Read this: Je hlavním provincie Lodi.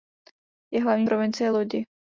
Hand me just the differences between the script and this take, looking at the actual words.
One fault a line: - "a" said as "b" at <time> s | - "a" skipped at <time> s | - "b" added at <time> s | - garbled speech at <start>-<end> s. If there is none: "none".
none